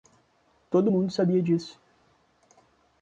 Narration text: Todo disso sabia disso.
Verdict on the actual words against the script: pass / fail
fail